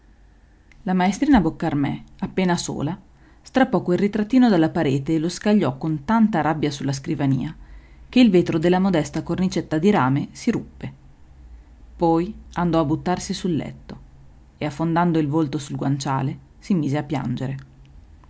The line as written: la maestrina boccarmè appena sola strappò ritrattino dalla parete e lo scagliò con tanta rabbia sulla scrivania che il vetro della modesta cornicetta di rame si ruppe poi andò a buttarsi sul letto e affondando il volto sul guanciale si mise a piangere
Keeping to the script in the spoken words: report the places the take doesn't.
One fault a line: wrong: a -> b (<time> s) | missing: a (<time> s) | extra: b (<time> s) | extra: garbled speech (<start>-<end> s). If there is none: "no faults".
extra: quel (3.8 s)